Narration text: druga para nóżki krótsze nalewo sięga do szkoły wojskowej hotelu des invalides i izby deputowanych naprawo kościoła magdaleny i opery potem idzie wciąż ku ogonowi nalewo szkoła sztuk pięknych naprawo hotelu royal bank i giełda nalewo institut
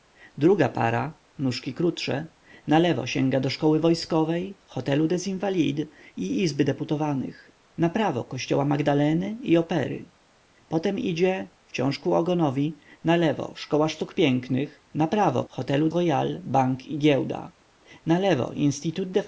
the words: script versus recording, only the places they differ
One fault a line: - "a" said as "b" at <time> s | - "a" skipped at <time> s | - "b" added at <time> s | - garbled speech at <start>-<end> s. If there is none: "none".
none